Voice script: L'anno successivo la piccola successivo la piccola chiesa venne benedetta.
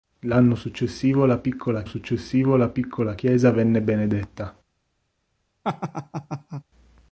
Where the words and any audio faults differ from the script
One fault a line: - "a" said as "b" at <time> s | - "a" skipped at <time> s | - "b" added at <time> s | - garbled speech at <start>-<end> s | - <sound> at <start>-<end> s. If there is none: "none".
- laugh at 5.6-6.6 s